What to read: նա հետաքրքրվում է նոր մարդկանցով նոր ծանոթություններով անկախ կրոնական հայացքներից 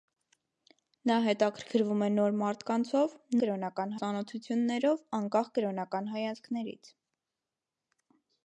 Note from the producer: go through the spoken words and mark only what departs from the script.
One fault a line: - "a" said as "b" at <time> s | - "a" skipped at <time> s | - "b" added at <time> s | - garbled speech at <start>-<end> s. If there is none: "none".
- "նոր" said as "կրոնական" at 3.4 s